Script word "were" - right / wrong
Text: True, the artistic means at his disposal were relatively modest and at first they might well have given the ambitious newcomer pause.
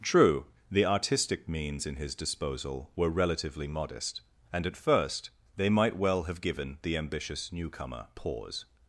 right